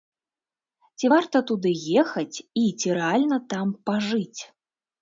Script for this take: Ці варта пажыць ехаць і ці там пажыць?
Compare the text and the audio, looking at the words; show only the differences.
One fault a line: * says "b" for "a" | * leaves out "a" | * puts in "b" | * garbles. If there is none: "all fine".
* says "туды" for "пажыць"
* puts in "рэальна"